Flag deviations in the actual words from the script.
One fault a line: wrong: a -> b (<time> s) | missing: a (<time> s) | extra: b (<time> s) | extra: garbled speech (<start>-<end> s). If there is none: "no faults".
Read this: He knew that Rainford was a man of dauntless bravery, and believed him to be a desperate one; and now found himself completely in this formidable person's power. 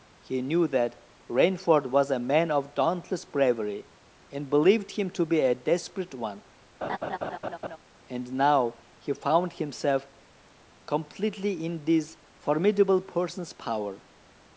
extra: he (9.0 s)